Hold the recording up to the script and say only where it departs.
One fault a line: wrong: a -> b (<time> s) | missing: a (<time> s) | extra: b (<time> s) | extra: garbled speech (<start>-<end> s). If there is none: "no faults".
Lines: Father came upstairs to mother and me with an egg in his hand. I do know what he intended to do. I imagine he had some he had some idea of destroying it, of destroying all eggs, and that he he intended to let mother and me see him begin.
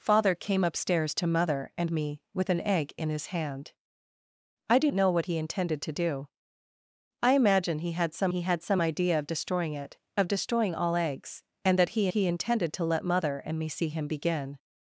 no faults